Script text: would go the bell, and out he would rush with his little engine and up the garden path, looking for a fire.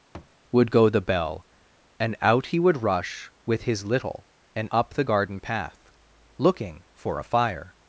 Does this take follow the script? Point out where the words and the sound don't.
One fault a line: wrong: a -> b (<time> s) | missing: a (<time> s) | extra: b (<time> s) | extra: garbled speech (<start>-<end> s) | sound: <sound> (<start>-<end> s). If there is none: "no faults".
sound: thud (0.1-0.4 s)
missing: engine (4.3 s)